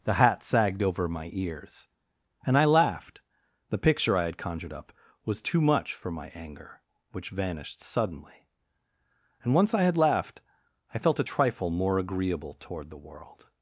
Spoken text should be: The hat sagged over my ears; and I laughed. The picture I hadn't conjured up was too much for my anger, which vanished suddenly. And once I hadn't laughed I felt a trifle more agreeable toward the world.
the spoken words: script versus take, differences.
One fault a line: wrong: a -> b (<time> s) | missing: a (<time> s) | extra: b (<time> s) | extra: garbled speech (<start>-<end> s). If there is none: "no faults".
wrong: hadn't -> had (4.2 s)
wrong: hadn't -> had (9.8 s)